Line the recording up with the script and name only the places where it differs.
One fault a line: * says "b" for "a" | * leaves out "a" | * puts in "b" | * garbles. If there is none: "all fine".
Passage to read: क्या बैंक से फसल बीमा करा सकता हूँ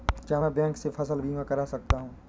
* puts in "मैं"